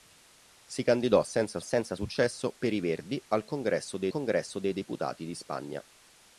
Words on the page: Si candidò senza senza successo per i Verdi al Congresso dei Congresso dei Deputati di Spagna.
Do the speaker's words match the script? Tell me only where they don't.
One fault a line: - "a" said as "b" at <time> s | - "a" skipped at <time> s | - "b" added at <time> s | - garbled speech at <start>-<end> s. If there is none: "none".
none